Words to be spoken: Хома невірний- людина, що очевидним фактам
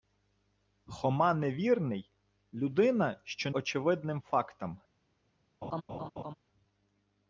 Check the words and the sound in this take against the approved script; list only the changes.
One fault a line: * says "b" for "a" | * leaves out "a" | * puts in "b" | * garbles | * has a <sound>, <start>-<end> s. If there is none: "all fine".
* has a laugh, 5.6-6.3 s